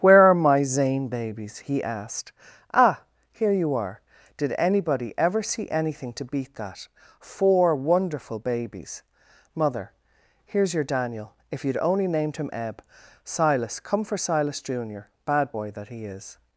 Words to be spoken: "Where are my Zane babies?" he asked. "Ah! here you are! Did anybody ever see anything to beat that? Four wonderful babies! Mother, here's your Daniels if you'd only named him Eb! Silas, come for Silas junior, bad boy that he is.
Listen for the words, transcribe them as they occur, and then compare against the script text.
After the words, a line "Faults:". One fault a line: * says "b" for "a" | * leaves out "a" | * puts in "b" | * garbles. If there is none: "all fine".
"Where are my Zane babies?" he asked. "Ah! here you are! Did anybody ever see anything to beat that? Four wonderful babies! Mother, here's your Daniel if you'd only named him Eb! Silas, come for Silas junior, bad boy that he is.
Faults:
* says "Daniel" for "Daniels"